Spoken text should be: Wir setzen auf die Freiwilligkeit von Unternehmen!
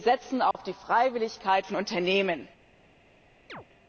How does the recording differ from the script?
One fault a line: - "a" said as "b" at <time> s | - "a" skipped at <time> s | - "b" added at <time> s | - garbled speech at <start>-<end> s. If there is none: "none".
none